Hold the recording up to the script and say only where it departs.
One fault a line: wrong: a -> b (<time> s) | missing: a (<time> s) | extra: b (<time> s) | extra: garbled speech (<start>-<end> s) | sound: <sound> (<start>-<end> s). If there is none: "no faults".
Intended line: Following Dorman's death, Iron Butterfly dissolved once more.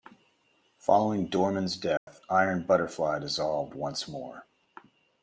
sound: dropout (2.0-2.1 s)